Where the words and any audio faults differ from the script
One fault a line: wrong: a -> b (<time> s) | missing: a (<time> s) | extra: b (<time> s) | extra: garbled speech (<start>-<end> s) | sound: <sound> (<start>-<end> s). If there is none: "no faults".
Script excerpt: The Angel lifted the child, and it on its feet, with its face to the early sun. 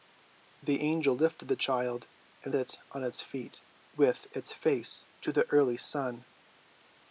no faults